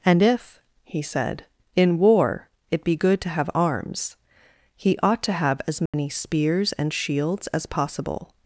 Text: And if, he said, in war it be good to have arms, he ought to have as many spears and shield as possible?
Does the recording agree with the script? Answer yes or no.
no